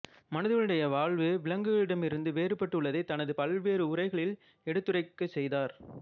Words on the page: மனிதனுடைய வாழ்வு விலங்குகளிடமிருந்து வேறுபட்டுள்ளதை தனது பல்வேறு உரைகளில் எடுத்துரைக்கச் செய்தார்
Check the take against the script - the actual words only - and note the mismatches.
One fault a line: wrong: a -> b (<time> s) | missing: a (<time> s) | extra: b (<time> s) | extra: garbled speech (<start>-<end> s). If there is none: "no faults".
no faults